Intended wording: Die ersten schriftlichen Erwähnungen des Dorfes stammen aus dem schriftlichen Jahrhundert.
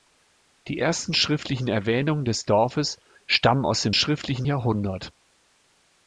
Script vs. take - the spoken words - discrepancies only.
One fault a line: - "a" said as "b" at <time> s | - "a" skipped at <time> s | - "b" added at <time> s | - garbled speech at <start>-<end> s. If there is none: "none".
none